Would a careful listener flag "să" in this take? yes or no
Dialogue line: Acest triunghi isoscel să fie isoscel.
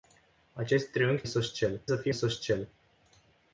no